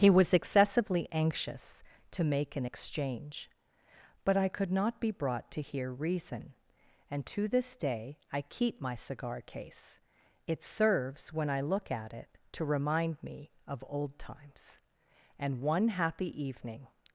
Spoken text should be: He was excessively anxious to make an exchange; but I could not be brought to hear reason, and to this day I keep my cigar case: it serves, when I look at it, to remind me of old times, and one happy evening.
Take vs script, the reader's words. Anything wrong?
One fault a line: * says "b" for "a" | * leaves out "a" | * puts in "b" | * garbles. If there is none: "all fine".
all fine